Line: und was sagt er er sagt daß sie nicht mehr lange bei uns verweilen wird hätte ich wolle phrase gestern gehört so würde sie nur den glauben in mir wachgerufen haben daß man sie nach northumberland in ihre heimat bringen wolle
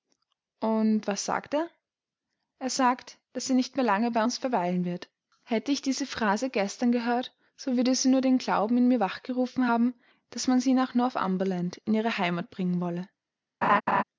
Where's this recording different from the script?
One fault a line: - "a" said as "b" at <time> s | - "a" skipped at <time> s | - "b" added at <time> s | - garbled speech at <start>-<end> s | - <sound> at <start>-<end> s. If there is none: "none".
- "wolle" said as "diese" at 5.8 s
- laugh at 13.6-14.0 s